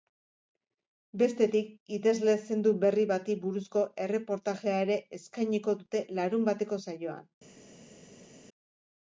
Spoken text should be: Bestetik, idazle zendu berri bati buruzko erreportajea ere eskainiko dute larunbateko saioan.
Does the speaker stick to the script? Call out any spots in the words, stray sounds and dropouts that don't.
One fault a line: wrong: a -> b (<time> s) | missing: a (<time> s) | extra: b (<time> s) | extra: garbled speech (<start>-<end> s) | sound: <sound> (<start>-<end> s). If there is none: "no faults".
no faults